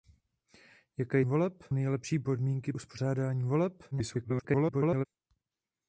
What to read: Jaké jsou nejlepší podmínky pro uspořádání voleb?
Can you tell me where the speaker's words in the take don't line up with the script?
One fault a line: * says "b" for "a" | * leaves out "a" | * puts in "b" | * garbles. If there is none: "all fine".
* says "voleb" for "jsou"
* leaves out "pro"
* garbles